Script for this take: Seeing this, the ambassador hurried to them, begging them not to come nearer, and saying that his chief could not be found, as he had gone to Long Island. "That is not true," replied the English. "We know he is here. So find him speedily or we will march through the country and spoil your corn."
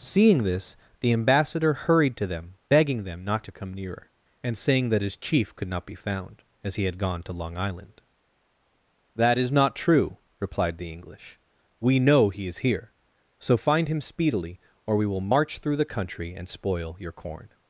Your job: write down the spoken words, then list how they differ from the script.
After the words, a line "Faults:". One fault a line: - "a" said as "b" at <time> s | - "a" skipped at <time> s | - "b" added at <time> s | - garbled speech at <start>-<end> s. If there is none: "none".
Seeing this, the ambassador hurried to them, begging them not to come nearer, and saying that his chief could not be found, as he had gone to Long Island. "That is not true," replied the English. "We know he is here. So find him speedily or we will march through the country and spoil your corn."
Faults:
none